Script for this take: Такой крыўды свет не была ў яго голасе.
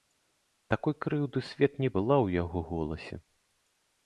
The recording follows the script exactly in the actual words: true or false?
true